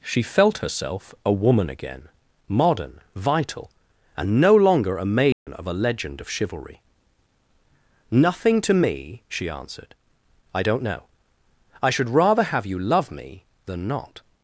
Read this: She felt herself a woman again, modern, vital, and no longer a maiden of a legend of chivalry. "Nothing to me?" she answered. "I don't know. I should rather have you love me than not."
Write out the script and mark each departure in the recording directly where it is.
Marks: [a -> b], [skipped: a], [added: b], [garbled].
She felt herself a woman again, modern, vital, and no longer a maiden of a legend of chivalry. "Nothing to me?" she answered. "I don't know. I should rather have you love me than not."